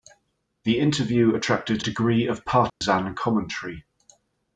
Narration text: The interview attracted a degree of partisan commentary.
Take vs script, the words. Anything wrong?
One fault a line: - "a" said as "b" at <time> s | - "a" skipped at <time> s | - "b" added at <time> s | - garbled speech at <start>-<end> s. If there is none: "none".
- "a" skipped at 1.8 s